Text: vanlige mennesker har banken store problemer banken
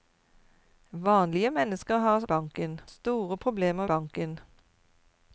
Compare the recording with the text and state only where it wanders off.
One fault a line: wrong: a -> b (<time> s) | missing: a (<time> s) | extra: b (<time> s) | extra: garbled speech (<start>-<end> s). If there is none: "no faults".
no faults